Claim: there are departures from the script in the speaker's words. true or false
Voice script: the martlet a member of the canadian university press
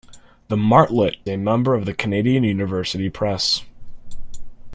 false